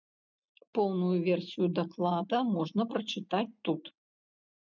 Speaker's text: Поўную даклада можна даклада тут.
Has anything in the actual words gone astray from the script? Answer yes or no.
yes